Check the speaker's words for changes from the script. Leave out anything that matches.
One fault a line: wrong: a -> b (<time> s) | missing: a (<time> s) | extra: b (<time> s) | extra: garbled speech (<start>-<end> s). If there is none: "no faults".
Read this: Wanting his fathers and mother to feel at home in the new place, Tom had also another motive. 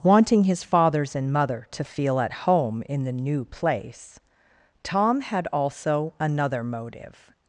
no faults